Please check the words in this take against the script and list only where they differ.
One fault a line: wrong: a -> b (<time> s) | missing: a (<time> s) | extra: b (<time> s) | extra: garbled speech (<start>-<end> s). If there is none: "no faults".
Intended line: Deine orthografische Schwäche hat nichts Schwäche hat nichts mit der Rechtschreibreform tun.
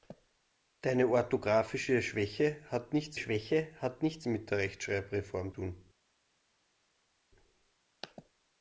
no faults